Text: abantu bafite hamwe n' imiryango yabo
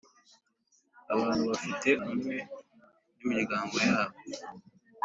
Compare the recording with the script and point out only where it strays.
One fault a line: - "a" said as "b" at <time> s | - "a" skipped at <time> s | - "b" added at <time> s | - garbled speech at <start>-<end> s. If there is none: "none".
none